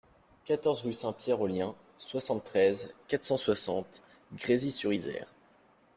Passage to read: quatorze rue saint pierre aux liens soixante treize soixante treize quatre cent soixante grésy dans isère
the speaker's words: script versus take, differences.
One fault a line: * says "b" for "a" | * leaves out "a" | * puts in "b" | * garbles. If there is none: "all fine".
* leaves out "soixante treize"
* says "sur" for "dans"